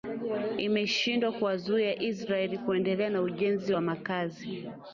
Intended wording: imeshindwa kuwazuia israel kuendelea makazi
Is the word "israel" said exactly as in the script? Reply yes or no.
yes